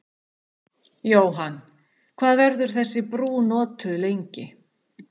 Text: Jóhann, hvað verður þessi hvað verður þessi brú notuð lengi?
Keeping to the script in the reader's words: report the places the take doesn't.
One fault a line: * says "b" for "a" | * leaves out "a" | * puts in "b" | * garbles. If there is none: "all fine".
* leaves out "hvað verður þessi"